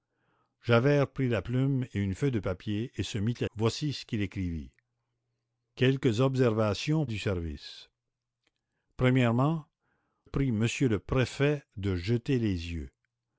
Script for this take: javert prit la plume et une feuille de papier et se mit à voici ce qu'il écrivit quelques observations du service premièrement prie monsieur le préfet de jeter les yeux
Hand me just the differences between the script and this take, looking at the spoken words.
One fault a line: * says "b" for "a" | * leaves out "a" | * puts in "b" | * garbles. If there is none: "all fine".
all fine